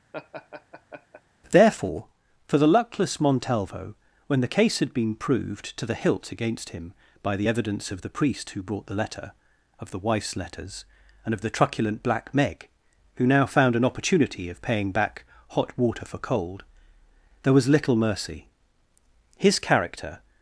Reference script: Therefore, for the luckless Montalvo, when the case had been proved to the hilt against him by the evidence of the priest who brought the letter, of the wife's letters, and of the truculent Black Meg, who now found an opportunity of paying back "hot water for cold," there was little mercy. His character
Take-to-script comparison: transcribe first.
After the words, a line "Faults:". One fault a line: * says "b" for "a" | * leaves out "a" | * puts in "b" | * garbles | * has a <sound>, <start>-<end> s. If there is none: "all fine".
Therefore, for the luckless Montalvo, when the case had been proved to the hilt against him by the evidence of the priest who brought the letter, of the wife's letters, and of the truculent Black Meg, who now found an opportunity of paying back "hot water for cold," there was little mercy. His character
Faults:
* has a laugh, 0.1-1.2 s